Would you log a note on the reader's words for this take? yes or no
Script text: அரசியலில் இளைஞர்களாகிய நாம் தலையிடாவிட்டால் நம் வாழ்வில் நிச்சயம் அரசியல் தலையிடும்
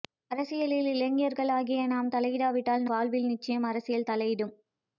yes